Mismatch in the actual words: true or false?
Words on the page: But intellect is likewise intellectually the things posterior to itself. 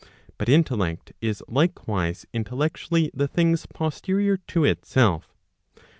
false